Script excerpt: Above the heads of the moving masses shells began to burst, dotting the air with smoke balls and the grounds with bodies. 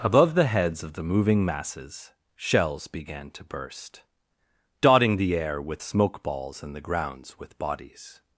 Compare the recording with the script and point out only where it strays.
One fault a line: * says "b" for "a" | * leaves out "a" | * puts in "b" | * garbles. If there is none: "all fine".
all fine